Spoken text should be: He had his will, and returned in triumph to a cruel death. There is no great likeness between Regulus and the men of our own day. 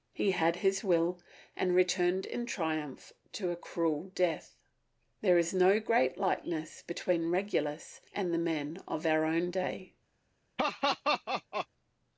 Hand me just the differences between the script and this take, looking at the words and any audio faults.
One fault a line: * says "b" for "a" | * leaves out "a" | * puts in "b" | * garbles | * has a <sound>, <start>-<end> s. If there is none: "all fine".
* has a laugh, 10.6-11.7 s